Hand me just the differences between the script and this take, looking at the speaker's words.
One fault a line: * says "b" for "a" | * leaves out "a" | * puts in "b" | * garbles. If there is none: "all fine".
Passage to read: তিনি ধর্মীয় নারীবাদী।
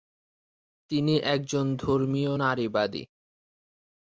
* puts in "একজন"